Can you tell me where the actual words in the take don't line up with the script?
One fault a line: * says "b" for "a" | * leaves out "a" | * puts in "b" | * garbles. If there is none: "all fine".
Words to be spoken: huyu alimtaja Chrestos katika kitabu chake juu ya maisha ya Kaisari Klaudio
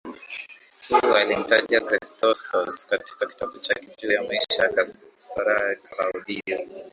all fine